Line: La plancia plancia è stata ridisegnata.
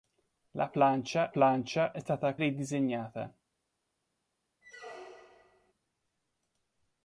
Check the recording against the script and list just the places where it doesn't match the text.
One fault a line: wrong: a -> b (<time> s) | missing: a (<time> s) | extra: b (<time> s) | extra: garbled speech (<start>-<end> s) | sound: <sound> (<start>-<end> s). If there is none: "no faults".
sound: squeak (4.6-5.7 s)